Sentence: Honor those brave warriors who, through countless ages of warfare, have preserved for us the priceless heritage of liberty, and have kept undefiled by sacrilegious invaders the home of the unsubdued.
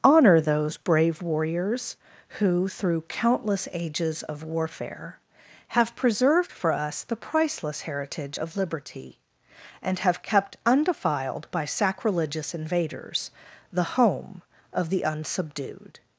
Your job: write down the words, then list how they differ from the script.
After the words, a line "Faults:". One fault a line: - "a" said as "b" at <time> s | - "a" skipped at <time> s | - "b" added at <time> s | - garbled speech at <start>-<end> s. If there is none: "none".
Honor those brave warriors who, through countless ages of warfare, have preserved for us the priceless heritage of liberty, and have kept undefiled by sacrilegious invaders the home of the unsubdued.
Faults:
none